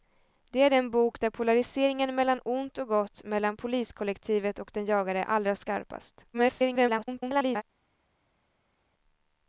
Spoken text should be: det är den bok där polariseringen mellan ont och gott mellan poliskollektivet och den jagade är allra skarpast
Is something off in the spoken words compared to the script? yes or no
yes